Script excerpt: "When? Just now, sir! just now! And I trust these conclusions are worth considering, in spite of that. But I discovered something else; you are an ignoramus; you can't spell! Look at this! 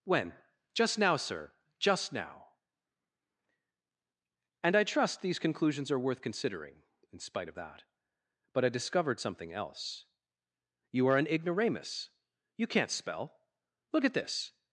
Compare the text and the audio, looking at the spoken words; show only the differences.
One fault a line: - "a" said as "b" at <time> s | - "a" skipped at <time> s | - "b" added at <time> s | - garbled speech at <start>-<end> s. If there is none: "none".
none